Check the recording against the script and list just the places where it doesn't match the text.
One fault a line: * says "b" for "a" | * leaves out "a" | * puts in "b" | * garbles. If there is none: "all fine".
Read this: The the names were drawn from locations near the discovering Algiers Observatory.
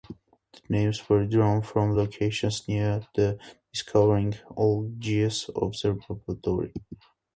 * leaves out "the"